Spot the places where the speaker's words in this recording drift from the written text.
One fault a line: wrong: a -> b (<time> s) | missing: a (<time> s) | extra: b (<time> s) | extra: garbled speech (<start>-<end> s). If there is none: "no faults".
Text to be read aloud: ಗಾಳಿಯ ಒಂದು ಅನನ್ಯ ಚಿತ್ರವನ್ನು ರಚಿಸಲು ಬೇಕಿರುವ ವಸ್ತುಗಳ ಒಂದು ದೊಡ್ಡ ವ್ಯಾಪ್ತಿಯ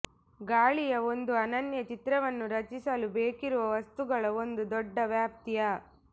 no faults